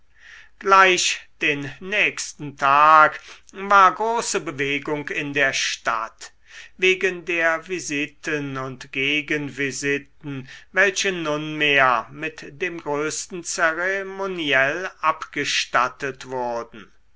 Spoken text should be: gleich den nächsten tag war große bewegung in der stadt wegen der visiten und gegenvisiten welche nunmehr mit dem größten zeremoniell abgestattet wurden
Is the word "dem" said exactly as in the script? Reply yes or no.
yes